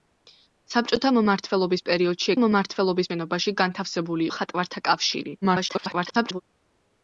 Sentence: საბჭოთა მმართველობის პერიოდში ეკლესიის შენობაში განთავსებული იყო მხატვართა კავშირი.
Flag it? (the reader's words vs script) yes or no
yes